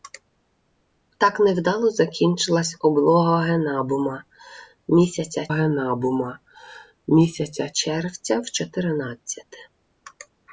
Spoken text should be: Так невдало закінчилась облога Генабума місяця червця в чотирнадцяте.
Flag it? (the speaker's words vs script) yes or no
yes